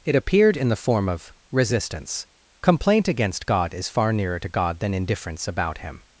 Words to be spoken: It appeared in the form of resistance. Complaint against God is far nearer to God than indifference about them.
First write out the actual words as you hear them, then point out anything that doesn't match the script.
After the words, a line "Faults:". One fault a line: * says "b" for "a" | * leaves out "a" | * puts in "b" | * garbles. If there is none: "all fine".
It appeared in the form of resistance. Complaint against God is far nearer to God than indifference about him.
Faults:
* says "him" for "them"